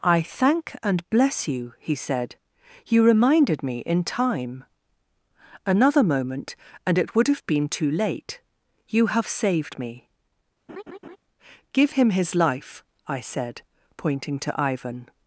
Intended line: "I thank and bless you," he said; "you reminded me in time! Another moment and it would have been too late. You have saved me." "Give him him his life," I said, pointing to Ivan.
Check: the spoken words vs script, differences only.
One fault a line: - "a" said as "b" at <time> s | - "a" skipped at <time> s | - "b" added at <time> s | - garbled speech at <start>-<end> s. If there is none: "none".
- "him" skipped at 12.1 s